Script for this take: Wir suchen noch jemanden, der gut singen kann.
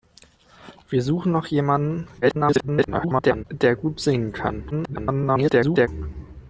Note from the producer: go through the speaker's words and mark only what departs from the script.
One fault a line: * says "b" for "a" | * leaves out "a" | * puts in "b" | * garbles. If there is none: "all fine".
* garbles
* garbles